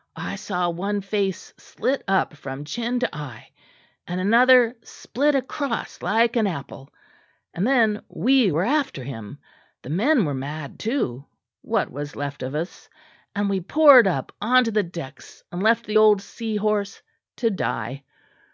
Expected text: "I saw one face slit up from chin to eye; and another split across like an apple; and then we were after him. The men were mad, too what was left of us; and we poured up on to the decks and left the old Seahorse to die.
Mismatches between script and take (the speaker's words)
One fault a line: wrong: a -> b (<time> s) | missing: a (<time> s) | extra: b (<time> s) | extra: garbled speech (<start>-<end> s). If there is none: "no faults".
no faults